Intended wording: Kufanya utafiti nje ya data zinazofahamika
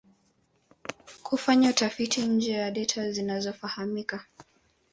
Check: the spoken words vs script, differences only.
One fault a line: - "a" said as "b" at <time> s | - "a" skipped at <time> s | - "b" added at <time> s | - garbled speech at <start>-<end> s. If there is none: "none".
none